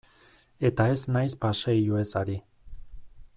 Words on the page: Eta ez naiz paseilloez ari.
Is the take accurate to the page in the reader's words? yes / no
yes